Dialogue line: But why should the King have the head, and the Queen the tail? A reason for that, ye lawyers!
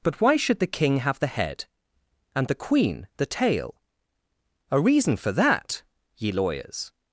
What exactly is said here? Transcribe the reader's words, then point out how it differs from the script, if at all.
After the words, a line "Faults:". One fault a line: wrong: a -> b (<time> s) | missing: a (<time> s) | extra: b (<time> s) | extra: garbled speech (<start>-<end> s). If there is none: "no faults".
But why should the King have the head, and the Queen the tail? A reason for that, ye lawyers!
Faults:
no faults